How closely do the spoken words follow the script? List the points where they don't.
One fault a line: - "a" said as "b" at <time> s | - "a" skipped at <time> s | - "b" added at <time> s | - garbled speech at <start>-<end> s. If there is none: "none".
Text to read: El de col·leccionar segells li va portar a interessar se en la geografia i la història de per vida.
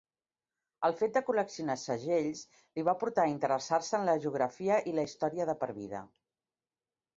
- "fet" added at 1.0 s